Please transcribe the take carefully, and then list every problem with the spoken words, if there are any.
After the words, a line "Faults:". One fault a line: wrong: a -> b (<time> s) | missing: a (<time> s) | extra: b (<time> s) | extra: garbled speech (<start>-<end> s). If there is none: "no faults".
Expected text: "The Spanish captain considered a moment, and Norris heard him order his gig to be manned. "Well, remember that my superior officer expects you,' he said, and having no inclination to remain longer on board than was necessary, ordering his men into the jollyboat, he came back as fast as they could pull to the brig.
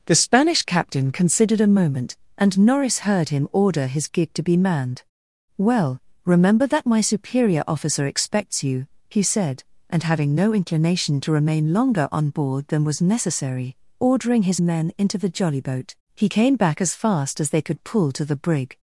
"The Spanish captain considered a moment, and Norris heard him order his gig to be manned. "Well, remember that my superior officer expects you,' he said, and having no inclination to remain longer on board than was necessary, ordering his men into the jollyboat, he came back as fast as they could pull to the brig.
Faults:
no faults